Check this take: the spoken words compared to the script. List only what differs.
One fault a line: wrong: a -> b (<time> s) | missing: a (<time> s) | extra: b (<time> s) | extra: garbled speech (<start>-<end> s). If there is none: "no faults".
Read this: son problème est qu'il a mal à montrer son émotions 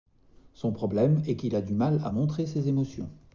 extra: du (1.6 s)
wrong: son -> ses (2.5 s)